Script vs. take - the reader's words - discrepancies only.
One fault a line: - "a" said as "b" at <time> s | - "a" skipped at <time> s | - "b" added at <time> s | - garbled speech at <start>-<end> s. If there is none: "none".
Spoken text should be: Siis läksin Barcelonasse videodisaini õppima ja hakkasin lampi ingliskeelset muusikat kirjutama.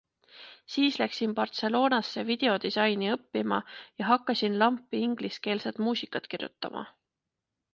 none